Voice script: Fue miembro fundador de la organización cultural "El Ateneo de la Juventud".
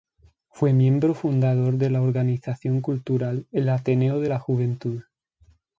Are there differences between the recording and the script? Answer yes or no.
no